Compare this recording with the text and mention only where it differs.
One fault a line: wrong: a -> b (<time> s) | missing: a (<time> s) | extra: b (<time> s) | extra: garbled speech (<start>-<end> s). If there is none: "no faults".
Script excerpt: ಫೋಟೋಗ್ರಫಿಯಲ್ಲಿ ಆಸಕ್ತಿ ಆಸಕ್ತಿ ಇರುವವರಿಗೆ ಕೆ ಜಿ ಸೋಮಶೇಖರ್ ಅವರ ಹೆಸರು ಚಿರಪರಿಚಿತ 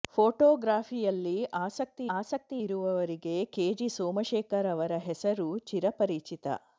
no faults